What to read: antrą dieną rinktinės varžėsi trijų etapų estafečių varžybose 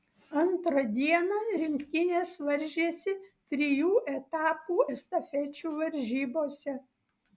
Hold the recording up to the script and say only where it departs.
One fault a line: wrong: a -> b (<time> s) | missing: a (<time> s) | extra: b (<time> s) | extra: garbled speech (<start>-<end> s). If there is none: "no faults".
no faults